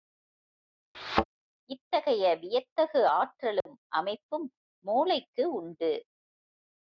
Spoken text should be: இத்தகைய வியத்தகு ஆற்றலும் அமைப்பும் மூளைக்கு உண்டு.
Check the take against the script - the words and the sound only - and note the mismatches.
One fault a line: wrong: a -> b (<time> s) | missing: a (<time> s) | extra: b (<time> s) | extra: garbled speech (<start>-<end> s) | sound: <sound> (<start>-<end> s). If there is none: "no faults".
sound: thud (0.9-1.2 s)
sound: dropout (3.6-3.7 s)